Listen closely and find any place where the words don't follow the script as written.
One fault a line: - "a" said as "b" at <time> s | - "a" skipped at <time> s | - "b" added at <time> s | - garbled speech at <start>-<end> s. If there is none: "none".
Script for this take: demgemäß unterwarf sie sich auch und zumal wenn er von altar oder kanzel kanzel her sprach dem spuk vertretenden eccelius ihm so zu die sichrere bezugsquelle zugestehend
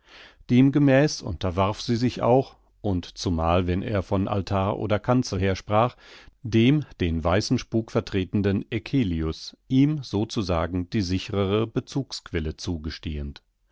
- "kanzel" skipped at 5.4 s
- "den weißen" added at 7.0 s
- "sagen" added at 10.4 s